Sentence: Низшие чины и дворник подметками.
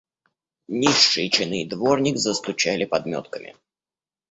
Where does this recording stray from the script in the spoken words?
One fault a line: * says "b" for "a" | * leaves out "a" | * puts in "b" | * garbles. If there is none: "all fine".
* puts in "застучали"